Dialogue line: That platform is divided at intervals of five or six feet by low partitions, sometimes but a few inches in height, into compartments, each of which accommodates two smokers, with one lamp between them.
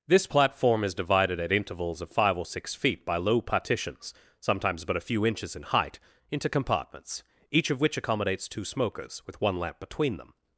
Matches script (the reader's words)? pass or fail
fail